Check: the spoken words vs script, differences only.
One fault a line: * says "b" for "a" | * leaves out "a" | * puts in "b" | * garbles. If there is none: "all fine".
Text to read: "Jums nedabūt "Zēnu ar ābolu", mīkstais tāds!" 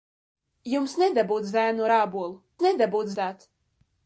* says "nedabūt" for "mīkstais"